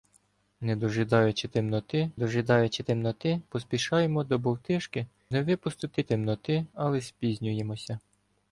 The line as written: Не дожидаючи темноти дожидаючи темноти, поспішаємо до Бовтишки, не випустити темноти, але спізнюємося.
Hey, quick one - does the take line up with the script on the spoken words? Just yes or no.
yes